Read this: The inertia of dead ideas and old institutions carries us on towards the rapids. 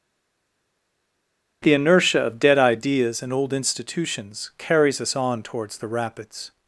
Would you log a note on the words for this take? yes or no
no